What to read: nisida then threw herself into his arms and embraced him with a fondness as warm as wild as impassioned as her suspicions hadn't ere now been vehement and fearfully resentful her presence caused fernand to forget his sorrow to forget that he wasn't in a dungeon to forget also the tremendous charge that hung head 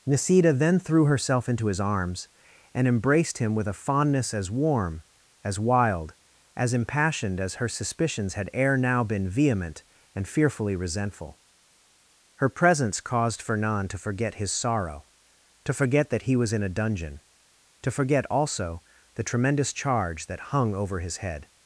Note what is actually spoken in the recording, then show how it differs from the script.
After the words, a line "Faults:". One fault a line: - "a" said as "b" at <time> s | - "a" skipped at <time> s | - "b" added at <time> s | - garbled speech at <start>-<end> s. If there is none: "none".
nisida then threw herself into his arms and embraced him with a fondness as warm as wild as impassioned as her suspicions had ere now been vehement and fearfully resentful her presence caused fernand to forget his sorrow to forget that he was in a dungeon to forget also the tremendous charge that hung over his head
Faults:
- "hadn't" said as "had" at 8.3 s
- "wasn't" said as "was" at 16.4 s
- "over his" added at 20.7 s